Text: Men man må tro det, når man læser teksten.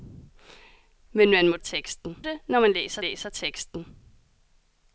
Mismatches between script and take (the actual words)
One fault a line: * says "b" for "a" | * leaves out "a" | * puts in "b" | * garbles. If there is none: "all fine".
* says "teksten" for "tro"
* puts in "læser"